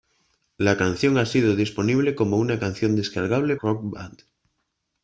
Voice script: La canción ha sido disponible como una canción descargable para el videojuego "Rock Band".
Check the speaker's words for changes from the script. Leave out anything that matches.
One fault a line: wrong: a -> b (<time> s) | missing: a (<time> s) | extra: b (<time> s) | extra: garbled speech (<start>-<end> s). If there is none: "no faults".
missing: para el videojuego (3.5 s)